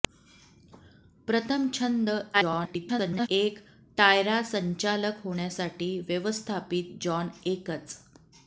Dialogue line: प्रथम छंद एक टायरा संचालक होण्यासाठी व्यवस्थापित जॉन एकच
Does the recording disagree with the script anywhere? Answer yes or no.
yes